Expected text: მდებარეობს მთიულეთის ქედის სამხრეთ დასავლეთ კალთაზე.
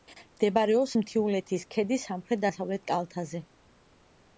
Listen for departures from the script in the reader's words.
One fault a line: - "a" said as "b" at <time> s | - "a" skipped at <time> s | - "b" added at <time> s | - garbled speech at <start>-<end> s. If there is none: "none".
none